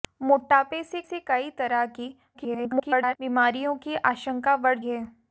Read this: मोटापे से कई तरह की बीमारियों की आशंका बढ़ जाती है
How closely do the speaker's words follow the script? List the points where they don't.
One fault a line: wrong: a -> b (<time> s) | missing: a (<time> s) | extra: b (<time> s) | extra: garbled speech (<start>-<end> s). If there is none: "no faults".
extra: से (1.0 s)
extra: garbled speech (2.3-3.2 s)
missing: जाती (4.8 s)